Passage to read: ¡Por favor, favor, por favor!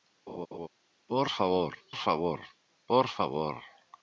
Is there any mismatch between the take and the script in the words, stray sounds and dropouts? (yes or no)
yes